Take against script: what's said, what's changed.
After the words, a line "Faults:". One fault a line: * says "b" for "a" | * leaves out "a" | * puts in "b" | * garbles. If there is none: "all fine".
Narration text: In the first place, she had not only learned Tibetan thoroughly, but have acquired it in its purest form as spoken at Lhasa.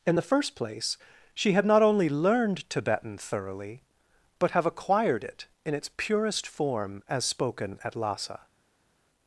In the first place, she had not only learned Tibetan thoroughly, but have acquired it in its purest form as spoken at Lhasa.
Faults:
all fine